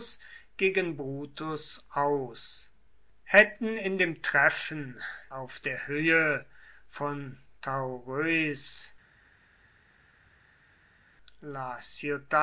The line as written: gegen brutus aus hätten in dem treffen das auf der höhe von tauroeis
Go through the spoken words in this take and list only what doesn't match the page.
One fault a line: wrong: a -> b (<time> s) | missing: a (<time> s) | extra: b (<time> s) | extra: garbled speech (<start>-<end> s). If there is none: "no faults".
missing: das (5.0 s)